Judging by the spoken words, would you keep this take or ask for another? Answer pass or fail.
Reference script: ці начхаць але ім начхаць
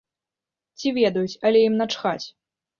fail